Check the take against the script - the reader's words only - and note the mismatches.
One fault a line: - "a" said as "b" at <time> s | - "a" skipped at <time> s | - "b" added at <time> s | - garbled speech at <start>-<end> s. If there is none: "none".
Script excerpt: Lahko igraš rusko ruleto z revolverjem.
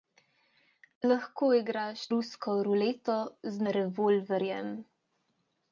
none